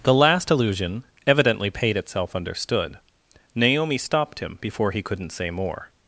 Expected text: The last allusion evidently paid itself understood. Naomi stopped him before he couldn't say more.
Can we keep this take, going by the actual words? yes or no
yes